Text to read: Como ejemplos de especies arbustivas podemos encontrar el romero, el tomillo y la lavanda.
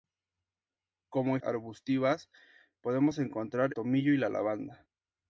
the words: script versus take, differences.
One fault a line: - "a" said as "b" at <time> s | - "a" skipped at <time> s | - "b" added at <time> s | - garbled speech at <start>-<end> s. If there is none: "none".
- "ejemplos de especies" skipped at 1.4 s
- "el romero el" skipped at 3.8 s